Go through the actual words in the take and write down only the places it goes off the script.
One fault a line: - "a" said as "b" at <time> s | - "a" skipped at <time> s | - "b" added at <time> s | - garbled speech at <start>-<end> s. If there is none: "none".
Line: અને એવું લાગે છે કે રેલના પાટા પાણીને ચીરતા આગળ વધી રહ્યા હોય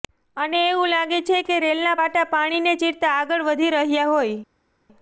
none